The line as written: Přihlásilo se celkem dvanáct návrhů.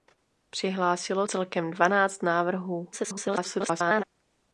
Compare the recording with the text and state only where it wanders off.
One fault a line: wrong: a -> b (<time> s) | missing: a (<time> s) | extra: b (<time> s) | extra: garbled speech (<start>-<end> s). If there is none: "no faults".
missing: se (1.3 s)
extra: garbled speech (2.9-4.0 s)